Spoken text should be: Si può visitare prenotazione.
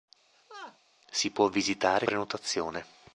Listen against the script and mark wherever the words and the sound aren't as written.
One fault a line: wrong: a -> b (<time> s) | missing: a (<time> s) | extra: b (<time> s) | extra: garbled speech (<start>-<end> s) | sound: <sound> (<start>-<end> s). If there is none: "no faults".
sound: laugh (0.3-0.8 s)